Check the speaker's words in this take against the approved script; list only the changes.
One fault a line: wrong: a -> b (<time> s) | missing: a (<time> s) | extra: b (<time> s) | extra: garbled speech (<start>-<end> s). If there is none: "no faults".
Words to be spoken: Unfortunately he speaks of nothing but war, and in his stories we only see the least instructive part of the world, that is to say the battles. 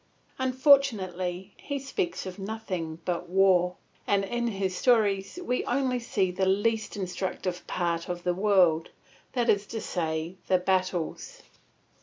no faults